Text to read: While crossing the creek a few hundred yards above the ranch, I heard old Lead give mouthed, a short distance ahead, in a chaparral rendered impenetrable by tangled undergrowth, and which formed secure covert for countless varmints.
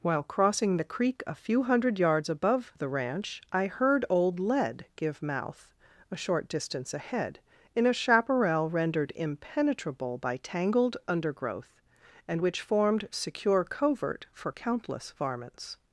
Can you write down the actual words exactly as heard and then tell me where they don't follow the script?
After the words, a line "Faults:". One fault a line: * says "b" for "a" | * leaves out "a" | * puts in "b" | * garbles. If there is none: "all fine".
While crossing the creek a few hundred yards above the ranch, I heard old Lead give mouth, a short distance ahead, in a chaparral rendered impenetrable by tangled undergrowth, and which formed secure covert for countless varmints.
Faults:
* says "mouth" for "mouthed"